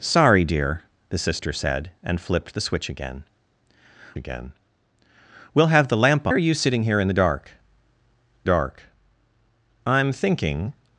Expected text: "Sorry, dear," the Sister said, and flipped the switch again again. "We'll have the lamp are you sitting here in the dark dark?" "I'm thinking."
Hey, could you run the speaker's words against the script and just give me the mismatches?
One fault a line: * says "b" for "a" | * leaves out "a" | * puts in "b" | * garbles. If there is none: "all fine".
all fine